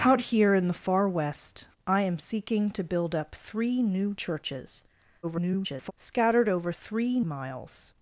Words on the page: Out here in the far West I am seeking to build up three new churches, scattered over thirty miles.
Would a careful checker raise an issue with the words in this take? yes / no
yes